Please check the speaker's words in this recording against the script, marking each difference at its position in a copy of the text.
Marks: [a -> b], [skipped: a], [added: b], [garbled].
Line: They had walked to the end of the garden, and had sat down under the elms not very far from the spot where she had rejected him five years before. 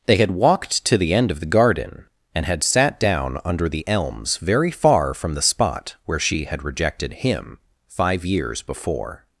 They had walked to the end of the garden, and had sat down under the elms [skipped: not] very far from the spot where she had rejected him five years before.